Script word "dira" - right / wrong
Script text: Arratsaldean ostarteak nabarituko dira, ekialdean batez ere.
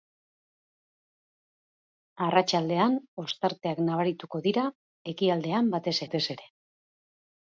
right